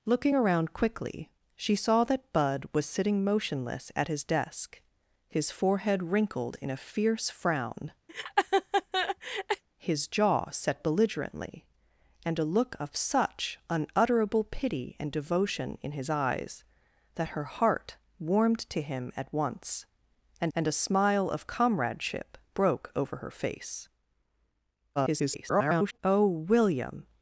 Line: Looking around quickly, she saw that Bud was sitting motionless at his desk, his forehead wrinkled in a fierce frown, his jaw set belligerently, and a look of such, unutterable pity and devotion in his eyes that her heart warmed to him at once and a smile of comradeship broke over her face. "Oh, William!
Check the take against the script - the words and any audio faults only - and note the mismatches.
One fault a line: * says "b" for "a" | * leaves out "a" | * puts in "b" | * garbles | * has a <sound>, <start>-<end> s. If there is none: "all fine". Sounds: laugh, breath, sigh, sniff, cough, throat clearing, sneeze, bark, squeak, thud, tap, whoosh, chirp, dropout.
* has a laugh, 8.1-9.6 s
* puts in "and"
* garbles